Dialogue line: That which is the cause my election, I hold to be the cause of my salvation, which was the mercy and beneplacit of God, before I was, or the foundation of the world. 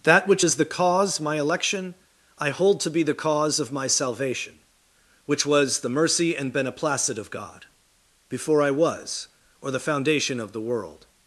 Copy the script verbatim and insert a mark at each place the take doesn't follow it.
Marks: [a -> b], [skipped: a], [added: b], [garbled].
That which is the cause my election, I hold to be the cause of my salvation, which was the mercy and beneplacit of God, before I was, or the foundation of the world.